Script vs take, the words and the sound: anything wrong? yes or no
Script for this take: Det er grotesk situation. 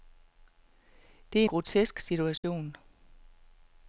yes